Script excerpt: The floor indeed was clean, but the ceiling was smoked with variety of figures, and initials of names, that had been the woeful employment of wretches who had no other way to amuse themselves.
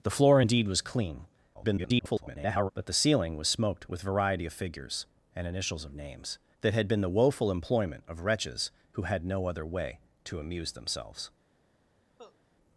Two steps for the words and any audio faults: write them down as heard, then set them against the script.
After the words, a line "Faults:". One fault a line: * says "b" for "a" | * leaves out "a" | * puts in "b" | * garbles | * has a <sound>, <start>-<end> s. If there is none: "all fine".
The floor indeed was clean, [garbled] but the ceiling was smoked with variety of figures, and initials of names, that had been the woeful employment of wretches who had no other way to amuse themselves.
Faults:
* garbles
* has a cough, 12.2-12.4 s